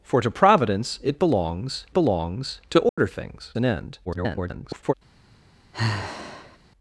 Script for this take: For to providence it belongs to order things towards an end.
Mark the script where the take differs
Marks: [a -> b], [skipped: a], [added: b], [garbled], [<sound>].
For to providence it belongs [added: belongs] to order [dropout] things [skipped: towards] an end. [garbled] [sigh]